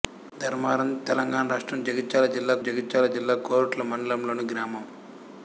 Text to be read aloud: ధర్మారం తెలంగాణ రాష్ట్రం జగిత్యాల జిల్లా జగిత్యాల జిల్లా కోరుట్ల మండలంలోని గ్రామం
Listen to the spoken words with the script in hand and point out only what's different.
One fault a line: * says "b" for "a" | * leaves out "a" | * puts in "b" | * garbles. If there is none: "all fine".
all fine